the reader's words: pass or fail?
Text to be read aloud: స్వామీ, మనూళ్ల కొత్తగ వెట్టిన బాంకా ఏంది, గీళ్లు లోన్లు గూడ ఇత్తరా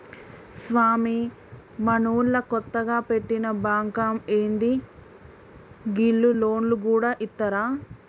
pass